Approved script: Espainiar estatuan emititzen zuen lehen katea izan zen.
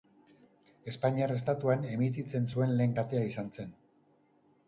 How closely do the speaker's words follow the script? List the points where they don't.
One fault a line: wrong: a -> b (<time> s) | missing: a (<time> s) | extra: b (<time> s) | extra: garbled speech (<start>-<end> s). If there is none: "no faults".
no faults